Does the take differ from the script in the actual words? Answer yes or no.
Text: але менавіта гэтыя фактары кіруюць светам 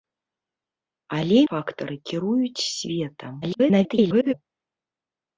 yes